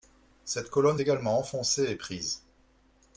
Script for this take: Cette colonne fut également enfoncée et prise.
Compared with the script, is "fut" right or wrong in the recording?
wrong